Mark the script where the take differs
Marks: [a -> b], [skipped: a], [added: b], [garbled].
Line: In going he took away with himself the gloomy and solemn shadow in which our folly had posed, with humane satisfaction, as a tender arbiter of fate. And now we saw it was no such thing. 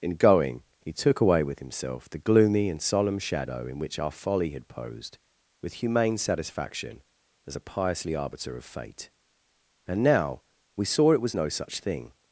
In going he took away with himself the gloomy and solemn shadow in which our folly had posed, with humane satisfaction, as a [tender -> piously] arbiter of fate. And now we saw it was no such thing.